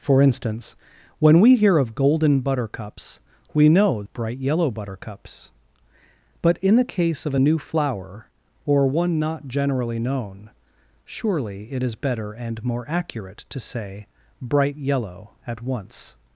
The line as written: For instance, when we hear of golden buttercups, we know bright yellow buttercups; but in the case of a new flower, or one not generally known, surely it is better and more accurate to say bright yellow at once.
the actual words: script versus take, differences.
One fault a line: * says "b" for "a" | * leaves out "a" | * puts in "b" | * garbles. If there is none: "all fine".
all fine